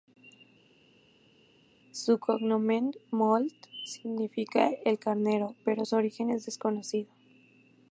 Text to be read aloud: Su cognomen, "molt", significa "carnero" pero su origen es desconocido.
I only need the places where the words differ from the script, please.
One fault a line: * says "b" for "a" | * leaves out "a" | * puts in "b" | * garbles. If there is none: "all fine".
* puts in "el"